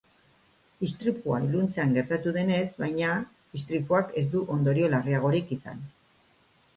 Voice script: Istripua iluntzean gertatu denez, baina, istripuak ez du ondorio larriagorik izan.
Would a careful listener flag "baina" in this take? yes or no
no